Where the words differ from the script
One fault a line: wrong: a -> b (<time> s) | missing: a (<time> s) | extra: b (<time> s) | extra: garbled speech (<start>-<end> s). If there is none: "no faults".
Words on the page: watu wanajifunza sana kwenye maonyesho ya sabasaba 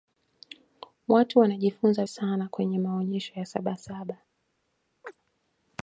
no faults